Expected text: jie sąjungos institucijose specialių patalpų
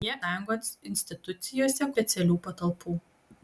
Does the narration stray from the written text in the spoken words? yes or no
no